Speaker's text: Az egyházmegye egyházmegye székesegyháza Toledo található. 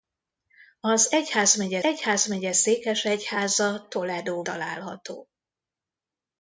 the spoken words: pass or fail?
pass